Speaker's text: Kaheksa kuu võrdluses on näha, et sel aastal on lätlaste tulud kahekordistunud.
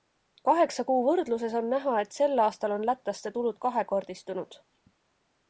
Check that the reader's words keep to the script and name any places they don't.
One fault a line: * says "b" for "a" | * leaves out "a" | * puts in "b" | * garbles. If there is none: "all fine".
all fine